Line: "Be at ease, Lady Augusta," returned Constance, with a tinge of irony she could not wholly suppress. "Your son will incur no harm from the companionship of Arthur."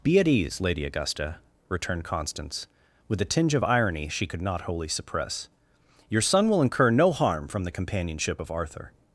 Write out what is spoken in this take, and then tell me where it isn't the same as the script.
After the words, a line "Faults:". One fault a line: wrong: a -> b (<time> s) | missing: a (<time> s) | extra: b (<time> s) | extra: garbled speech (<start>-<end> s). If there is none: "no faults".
"Be at ease, Lady Augusta," returned Constance, with a tinge of irony she could not wholly suppress. "Your son will incur no harm from the companionship of Arthur."
Faults:
no faults